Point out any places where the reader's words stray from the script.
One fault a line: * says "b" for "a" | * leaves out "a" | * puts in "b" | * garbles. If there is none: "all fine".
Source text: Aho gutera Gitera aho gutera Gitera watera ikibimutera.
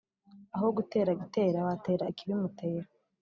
* leaves out "aho gutera Gitera"